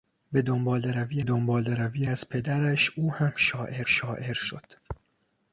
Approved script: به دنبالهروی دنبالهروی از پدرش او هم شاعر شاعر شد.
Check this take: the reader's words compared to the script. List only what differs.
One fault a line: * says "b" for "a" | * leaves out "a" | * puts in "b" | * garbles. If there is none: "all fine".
all fine